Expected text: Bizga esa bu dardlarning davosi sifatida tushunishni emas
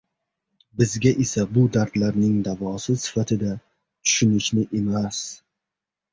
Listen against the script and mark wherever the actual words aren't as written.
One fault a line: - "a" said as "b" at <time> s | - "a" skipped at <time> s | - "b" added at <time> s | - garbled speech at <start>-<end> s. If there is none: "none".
none